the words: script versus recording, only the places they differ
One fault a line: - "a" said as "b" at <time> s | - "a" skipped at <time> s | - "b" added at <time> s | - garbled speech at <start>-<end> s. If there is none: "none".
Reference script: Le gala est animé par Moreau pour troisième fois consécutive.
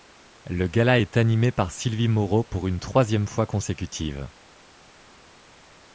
- "Sylvie" added at 1.7 s
- "une" added at 2.7 s